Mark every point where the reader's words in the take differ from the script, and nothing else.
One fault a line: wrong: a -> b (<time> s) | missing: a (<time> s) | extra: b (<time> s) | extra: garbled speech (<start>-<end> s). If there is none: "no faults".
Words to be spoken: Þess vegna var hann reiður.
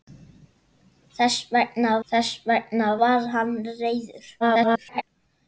extra: þess vegna (2.1 s)
extra: garbled speech (4.4-5.0 s)